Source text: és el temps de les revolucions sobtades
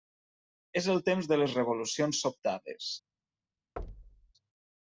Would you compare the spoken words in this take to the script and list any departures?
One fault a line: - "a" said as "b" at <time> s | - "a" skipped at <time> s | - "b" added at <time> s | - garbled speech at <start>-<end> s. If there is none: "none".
none